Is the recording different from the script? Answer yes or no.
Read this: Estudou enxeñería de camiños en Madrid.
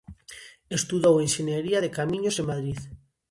no